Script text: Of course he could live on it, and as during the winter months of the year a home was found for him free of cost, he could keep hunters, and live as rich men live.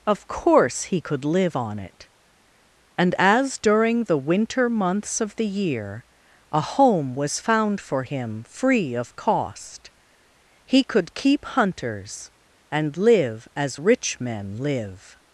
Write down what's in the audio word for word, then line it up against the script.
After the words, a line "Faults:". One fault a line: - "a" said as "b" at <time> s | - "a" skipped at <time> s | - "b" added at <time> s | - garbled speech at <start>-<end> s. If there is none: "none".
Of course he could live on it, and as during the winter months of the year a home was found for him free of cost, he could keep hunters, and live as rich men live.
Faults:
none